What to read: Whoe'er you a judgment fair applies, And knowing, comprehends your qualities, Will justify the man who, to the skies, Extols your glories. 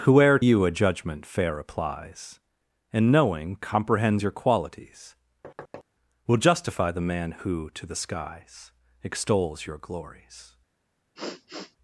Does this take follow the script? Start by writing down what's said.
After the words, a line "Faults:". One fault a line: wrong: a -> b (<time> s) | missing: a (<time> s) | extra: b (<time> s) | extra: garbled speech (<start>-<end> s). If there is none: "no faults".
Whoe'er you a judgment fair applies, And knowing, comprehends your qualities, Will justify the man who, to the skies, Extols your glories.
Faults:
no faults